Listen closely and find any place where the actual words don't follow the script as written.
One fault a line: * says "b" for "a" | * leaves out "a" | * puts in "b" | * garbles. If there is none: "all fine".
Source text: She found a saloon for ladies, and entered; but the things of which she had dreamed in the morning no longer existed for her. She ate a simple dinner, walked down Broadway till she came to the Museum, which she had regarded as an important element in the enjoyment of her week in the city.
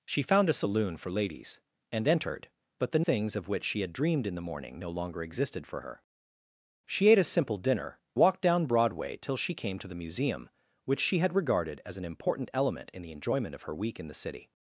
all fine